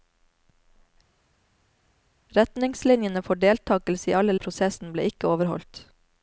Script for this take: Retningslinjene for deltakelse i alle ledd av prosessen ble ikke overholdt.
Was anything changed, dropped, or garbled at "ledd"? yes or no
yes